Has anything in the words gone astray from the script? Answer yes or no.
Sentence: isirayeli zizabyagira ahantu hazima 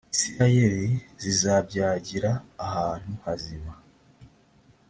no